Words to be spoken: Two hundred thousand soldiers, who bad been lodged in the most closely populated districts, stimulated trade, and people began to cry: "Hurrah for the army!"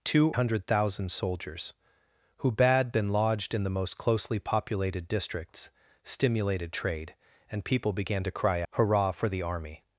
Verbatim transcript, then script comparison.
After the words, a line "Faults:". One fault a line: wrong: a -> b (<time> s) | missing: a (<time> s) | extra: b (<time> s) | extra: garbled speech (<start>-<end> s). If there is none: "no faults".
Two hundred thousand soldiers, who bad been lodged in the most closely populated districts, stimulated trade, and people began to cry: "Hurrah for the army!"
Faults:
no faults